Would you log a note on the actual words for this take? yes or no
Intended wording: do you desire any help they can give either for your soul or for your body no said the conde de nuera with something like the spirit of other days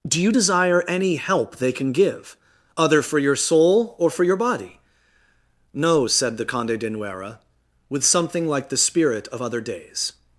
yes